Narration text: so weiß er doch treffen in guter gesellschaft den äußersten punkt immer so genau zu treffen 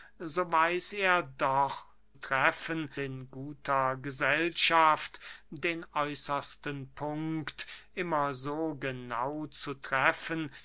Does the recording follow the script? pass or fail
pass